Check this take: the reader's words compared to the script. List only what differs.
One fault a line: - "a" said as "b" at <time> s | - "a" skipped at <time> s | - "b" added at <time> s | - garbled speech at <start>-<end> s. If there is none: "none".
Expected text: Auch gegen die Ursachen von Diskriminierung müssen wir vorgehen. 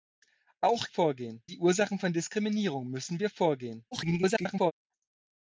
- "gegen" said as "vorgehen" at 0.9 s
- garbled speech at 3.9-4.7 s